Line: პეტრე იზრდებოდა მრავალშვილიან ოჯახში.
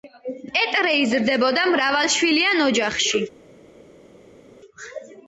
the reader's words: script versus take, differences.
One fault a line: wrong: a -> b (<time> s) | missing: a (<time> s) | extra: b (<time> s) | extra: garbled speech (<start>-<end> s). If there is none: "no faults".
no faults